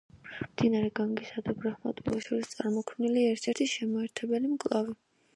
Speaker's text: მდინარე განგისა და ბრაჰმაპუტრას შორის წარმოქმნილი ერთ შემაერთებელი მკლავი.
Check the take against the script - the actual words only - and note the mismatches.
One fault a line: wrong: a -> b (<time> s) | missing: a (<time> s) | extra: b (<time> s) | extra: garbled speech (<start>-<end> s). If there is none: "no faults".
extra: ერთი (3.5 s)